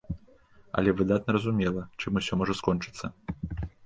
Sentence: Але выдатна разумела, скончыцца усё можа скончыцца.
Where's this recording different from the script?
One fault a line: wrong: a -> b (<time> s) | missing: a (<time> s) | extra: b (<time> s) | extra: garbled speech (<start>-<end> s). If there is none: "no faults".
wrong: скончыцца -> чым (2.0 s)